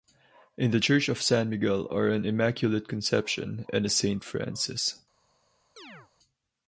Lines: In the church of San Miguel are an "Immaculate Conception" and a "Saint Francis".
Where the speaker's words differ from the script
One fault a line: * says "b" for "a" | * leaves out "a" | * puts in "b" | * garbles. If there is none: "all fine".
all fine